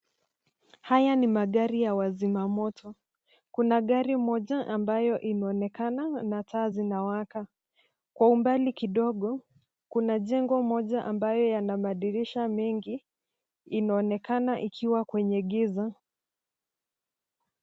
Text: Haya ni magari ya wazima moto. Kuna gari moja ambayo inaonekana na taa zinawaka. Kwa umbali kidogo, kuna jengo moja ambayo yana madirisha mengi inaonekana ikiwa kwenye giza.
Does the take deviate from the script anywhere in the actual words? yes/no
no